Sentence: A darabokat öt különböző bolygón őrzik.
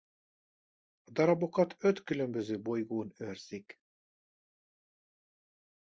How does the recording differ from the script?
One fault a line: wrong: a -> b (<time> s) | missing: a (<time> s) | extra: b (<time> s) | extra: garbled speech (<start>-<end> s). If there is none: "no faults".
no faults